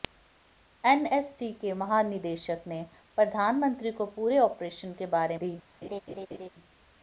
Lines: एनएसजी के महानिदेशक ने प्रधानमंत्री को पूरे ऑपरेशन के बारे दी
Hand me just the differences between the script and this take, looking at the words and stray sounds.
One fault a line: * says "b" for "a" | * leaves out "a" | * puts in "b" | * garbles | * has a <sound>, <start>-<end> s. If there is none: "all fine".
* has a laugh, 5.8-6.5 s